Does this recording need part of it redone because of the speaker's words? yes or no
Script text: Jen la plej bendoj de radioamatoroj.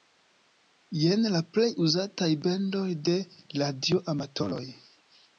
yes